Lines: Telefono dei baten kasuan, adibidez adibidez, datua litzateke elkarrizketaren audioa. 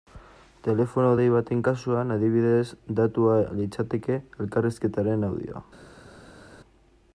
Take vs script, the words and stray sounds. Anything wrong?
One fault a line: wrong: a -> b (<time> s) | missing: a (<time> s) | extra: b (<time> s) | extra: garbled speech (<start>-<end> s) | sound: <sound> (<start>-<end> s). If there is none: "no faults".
missing: adibidez (2.7 s)